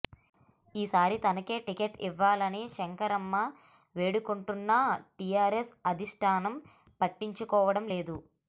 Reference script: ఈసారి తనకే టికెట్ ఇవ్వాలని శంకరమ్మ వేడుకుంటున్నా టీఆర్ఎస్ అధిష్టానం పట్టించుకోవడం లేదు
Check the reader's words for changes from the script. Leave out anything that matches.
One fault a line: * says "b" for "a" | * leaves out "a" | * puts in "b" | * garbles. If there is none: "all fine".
all fine